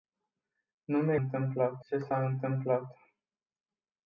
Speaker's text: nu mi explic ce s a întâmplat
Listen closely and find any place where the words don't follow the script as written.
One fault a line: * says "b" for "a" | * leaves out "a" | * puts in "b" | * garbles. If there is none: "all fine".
* says "întâmplat" for "explic"